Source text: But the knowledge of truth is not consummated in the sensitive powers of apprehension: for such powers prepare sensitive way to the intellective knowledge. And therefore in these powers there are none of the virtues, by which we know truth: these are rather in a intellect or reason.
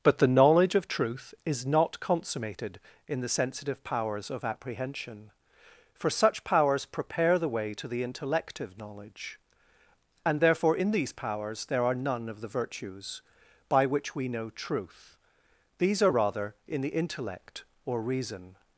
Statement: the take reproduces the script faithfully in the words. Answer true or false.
false